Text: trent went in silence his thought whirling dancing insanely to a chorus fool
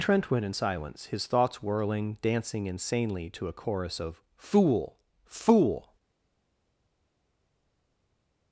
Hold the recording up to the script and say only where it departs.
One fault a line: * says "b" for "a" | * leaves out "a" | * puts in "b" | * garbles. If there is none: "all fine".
* says "thoughts" for "thought"
* puts in "of fool"